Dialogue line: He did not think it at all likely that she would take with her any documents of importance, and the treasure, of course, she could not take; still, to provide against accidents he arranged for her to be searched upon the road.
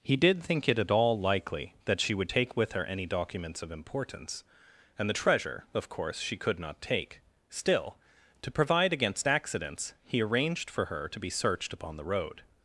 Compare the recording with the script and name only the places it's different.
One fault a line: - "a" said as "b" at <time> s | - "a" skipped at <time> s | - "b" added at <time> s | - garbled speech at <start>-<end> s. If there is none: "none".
- "not" skipped at 0.4 s